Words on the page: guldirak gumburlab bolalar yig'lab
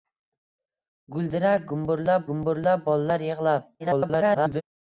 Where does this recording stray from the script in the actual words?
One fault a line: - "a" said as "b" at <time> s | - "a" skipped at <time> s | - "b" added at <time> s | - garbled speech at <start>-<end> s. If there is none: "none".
- "gumburlab" added at 2.3 s
- garbled speech at 3.8-4.6 s